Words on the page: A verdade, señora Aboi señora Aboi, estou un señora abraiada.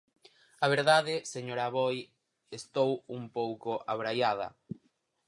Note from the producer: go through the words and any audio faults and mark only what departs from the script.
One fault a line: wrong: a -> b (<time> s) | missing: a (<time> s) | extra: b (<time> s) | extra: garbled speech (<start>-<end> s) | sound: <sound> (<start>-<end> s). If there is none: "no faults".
missing: señora Aboi (2.0 s)
wrong: señora -> pouco (3.4 s)